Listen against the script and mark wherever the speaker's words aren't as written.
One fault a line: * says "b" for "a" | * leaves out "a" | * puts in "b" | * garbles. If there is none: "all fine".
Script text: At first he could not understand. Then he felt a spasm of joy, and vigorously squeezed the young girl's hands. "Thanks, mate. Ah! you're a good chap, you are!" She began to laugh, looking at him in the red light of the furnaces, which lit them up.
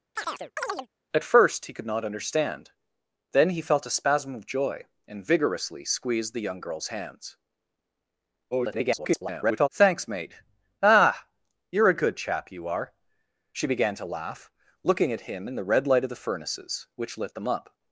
* garbles